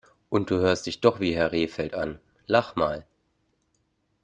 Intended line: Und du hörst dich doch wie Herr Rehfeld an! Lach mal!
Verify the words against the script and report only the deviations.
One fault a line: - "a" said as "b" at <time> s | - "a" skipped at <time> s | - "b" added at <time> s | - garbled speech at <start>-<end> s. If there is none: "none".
none